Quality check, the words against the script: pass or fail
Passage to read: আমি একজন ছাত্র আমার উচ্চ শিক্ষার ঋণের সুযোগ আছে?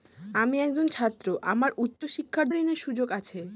pass